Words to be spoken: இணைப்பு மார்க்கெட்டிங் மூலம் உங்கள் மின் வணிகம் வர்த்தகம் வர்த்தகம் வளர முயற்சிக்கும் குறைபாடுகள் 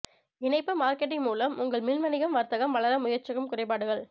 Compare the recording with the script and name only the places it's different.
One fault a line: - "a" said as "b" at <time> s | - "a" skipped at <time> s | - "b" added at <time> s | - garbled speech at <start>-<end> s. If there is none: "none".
- "வர்த்தகம்" skipped at 2.8 s